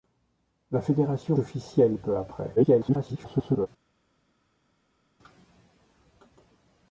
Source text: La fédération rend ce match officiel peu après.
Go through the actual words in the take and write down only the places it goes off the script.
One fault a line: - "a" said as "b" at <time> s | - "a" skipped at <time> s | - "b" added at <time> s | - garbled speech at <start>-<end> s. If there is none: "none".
- "rend ce match" skipped at 1.4 s
- garbled speech at 2.6-3.7 s